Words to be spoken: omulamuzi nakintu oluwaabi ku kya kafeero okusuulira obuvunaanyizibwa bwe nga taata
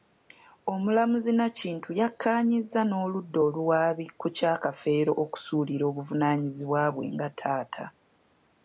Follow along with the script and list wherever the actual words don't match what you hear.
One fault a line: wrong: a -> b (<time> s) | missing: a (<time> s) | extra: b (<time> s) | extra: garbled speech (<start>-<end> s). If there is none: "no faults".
extra: yakkaanyizza n'oludda (2.0 s)